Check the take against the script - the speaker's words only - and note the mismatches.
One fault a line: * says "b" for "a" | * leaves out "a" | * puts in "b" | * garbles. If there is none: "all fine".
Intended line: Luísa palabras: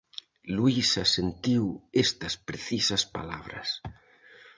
* puts in "sentiu estas precisas"